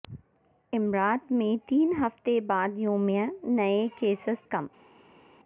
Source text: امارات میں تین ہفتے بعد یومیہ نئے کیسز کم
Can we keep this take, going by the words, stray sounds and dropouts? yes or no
yes